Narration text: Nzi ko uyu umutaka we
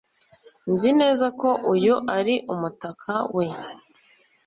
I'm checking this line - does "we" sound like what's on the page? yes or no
yes